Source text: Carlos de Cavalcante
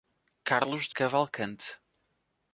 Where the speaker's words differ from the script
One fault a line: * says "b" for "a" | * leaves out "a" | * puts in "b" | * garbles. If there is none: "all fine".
all fine